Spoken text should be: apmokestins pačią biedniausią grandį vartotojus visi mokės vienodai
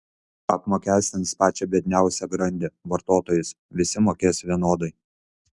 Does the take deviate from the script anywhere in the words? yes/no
no